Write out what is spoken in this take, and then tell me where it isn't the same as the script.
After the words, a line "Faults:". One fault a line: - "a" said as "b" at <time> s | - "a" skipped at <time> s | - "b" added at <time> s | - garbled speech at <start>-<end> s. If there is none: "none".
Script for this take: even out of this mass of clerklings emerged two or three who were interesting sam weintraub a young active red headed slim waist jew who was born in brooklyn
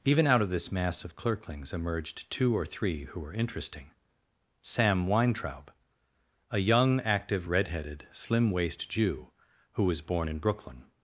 even out of this mass of clerklings emerged two or three who were interesting sam weintraub a young active red headed slim waist jew who was born in brooklyn
Faults:
none